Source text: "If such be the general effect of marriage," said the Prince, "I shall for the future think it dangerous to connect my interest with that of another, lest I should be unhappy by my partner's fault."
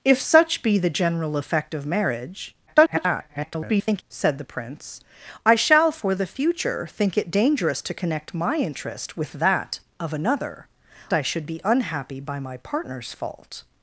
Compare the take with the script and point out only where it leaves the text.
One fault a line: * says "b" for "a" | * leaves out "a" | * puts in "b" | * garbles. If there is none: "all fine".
* garbles
* leaves out "lest"